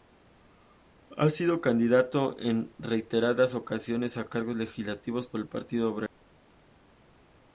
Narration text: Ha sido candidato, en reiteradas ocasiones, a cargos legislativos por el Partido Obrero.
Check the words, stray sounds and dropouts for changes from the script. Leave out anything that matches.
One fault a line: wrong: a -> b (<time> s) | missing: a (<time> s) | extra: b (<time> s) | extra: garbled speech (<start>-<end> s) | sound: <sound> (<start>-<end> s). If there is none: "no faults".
no faults